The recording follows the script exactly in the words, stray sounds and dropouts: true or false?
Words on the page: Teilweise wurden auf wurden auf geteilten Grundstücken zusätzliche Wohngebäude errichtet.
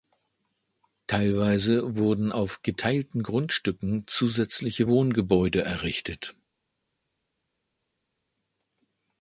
false